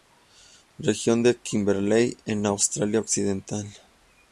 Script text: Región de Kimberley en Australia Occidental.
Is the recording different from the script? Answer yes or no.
no